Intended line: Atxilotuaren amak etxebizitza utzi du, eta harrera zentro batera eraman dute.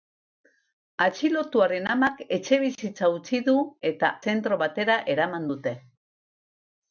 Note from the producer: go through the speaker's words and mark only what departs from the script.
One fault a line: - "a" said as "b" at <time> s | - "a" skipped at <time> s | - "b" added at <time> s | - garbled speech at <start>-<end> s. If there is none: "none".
- "harrera" skipped at 4.1 s